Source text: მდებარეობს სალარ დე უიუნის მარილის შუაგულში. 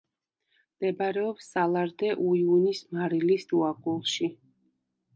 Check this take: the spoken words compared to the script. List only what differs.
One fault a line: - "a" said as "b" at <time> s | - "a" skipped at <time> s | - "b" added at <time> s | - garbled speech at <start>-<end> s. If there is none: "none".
none